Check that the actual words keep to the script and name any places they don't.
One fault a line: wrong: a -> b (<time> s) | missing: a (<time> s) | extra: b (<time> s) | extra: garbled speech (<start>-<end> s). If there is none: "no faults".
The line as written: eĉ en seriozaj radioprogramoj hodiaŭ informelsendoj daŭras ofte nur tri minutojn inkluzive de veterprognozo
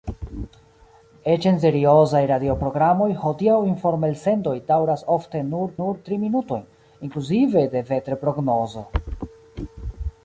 extra: nur (5.8 s)